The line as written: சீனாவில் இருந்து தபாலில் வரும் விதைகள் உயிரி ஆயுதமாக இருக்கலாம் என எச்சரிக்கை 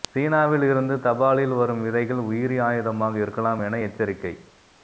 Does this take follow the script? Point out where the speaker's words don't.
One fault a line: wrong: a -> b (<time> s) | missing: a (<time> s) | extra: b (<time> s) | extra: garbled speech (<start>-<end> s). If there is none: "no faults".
no faults